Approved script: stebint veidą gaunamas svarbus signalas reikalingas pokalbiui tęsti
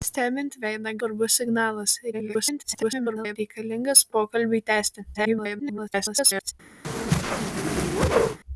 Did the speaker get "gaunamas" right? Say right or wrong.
wrong